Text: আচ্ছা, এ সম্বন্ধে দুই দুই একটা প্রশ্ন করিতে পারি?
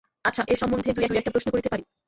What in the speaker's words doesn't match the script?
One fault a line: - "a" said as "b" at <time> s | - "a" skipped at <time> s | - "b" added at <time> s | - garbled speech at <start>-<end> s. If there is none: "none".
none